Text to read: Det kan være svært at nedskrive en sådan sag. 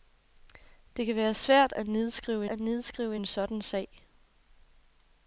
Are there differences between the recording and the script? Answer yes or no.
yes